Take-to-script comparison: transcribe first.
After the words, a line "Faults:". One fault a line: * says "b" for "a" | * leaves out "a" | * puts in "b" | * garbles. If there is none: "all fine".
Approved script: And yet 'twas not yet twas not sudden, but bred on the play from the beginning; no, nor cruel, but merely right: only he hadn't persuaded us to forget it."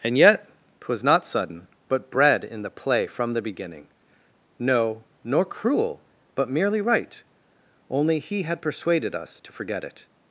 And yet 'twas not sudden, but bred in the play from the beginning; no, nor cruel, but merely right: only he had persuaded us to forget it."
Faults:
* leaves out "yet twas not"
* says "in" for "on"
* says "had" for "hadn't"